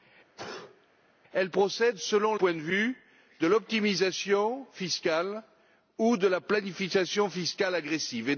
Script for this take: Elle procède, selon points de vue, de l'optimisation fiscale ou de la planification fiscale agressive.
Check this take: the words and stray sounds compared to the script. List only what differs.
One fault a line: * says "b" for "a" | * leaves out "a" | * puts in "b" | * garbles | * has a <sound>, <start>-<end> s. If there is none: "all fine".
* has a sneeze, 0.4-0.9 s